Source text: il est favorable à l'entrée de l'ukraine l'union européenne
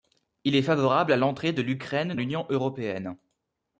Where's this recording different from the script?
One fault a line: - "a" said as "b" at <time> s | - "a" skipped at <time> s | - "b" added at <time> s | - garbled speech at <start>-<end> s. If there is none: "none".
none